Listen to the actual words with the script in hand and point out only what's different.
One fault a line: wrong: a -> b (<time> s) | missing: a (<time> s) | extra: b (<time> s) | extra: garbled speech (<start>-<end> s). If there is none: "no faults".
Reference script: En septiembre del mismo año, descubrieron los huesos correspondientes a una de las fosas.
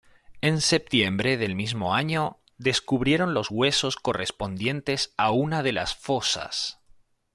no faults